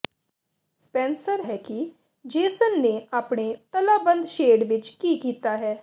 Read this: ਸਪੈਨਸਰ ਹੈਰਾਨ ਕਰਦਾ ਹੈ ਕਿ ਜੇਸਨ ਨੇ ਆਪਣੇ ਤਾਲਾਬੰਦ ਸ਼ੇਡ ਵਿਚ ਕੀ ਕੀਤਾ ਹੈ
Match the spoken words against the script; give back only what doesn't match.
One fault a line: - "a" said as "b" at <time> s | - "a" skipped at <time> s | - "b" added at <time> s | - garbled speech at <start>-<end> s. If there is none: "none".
- "ਹੈਰਾਨ ਕਰਦਾ" skipped at 1.4 s